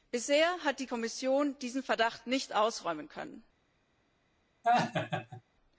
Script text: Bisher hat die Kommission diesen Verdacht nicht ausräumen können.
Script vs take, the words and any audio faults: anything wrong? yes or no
yes